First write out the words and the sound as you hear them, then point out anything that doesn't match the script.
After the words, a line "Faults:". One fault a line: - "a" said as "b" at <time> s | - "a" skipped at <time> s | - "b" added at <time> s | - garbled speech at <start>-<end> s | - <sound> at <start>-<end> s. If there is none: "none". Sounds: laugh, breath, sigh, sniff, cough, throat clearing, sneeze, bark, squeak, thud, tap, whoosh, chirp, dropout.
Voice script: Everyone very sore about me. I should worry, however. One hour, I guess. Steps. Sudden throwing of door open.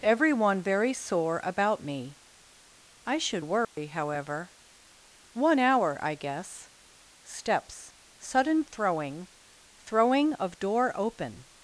Everyone very sore about me. I should worry, however. One hour, I guess. Steps. Sudden throwing throwing of door open.
Faults:
- dropout at 3.6-3.8 s
- "throwing" added at 9.8 s